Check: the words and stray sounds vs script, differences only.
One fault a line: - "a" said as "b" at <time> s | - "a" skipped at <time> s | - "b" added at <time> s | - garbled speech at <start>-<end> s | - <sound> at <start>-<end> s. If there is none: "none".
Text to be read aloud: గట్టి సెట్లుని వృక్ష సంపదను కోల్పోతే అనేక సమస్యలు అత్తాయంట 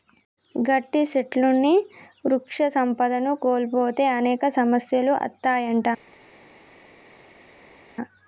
none